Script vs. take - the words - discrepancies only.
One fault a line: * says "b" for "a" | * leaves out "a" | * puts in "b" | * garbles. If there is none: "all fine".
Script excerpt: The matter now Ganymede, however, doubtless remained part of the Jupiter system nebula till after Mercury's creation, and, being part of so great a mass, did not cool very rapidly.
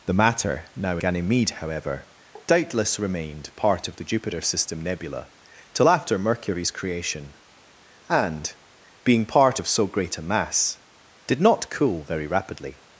all fine